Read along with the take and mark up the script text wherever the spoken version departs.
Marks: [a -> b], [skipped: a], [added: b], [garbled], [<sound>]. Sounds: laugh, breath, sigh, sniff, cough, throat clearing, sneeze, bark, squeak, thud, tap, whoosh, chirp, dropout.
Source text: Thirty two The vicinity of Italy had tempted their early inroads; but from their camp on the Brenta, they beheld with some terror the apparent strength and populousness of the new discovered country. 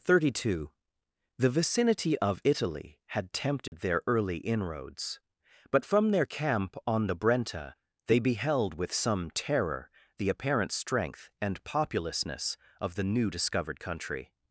Thirty two The vicinity of Italy had tempted [dropout] their early inroads; but from their camp on the Brenta, they beheld with some terror the apparent strength and populousness of the new discovered country.